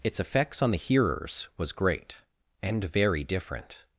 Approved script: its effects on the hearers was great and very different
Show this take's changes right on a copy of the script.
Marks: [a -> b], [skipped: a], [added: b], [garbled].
its effects on the hearers was great and very different